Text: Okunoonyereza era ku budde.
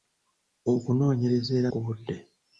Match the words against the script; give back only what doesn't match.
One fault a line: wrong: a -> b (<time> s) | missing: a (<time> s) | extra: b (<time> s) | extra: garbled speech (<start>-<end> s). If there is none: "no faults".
no faults